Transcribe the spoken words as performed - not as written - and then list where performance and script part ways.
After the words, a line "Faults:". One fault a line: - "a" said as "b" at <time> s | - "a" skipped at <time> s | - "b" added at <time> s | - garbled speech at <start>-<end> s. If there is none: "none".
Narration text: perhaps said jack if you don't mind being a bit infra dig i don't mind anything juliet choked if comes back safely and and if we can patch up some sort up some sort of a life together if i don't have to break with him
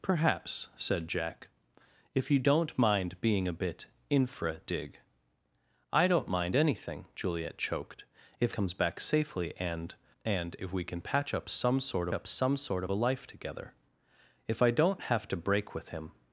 perhaps said jack if you don't mind being a bit infra dig i don't mind anything juliet choked if comes back safely and and if we can patch up some sort up some sort of a life together if i don't have to break with him
Faults:
none